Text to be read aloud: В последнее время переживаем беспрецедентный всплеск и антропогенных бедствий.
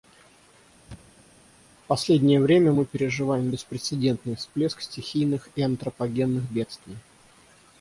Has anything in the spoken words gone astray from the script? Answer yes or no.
yes